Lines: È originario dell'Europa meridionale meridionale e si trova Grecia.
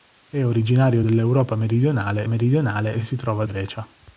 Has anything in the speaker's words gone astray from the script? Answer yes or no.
no